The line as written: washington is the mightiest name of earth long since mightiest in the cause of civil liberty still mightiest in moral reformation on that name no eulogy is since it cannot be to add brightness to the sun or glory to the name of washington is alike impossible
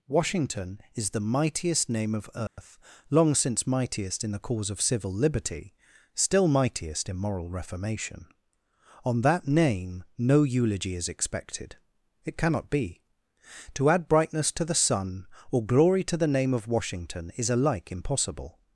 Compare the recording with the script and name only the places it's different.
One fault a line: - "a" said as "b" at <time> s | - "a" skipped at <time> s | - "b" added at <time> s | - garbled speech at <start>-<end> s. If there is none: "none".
- "since" said as "expected" at 11.1 s